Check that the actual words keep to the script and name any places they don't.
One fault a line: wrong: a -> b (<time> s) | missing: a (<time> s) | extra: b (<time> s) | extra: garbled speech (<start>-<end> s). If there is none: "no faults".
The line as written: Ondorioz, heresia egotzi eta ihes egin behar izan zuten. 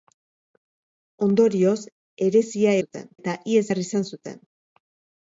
wrong: egotzi -> zuten (2.8 s)
missing: egin (3.6 s)